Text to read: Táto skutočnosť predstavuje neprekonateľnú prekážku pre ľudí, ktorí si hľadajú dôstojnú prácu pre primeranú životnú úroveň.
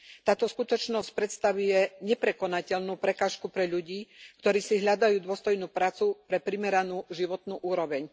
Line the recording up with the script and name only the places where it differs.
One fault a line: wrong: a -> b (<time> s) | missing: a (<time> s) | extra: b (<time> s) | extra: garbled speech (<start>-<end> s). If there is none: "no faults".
no faults